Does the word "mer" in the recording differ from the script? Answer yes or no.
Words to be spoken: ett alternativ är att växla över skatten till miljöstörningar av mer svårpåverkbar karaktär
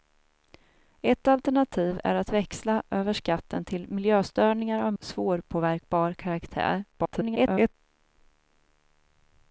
yes